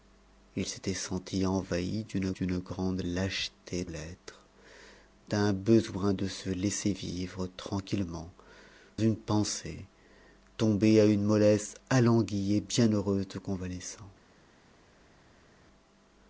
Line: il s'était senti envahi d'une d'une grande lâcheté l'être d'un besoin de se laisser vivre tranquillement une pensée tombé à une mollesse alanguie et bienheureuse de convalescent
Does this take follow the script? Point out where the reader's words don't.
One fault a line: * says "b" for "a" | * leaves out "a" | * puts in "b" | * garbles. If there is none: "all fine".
all fine